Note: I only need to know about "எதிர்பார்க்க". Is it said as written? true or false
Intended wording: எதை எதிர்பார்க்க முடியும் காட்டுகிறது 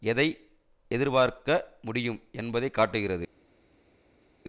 true